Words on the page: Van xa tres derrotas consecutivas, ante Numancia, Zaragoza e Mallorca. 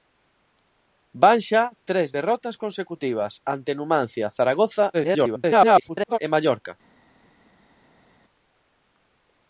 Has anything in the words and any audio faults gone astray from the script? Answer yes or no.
yes